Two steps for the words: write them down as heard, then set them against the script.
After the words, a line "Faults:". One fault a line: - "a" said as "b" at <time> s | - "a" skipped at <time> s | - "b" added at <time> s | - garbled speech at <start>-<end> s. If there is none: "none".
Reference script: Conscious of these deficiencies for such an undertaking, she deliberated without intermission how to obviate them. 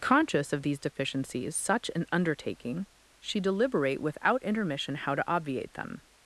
Conscious of these deficiencies such an undertaking, she deliberate without intermission how to obviate them.
Faults:
- "for" skipped at 1.6 s
- "deliberated" said as "deliberate" at 3.4 s